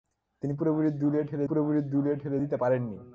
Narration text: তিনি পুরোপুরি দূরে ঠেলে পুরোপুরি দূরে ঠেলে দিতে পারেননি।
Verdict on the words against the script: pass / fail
pass